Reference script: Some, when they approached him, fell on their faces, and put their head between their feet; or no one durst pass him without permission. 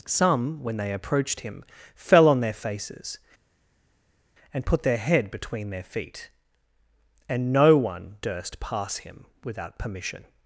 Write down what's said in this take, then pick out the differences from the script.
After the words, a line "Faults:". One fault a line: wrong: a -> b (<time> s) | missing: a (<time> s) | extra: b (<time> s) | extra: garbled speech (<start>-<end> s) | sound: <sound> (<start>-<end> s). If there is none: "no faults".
Some, when they approached him, fell on their faces, and put their head between their feet; and no one durst pass him without permission.
Faults:
wrong: or -> and (7.3 s)